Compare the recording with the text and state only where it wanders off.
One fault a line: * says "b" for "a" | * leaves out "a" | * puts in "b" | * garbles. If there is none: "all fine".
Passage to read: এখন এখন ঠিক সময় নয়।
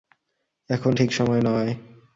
* leaves out "এখন"